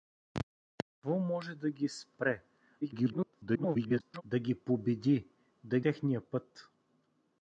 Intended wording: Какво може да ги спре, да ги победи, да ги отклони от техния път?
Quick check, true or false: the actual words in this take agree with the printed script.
false